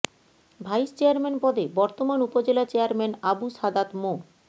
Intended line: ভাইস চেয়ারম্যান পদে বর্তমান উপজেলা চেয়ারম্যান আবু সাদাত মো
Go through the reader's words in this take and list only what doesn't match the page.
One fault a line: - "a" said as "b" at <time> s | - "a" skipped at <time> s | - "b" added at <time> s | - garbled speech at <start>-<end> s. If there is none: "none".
none